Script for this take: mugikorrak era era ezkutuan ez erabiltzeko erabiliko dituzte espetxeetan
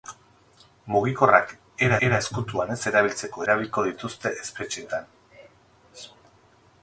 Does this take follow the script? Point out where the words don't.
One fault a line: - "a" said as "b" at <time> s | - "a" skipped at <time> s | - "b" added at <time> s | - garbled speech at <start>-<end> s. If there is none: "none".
none